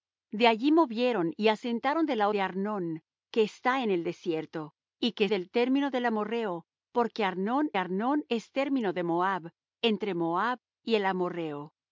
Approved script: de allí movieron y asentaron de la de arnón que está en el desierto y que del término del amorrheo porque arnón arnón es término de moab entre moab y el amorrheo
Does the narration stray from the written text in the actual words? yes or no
no